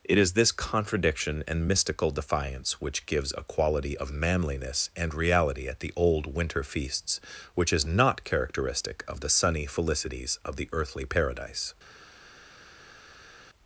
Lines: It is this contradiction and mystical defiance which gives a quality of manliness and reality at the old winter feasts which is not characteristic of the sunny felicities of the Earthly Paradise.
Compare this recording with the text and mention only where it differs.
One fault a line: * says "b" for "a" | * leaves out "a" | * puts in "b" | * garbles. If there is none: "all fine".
all fine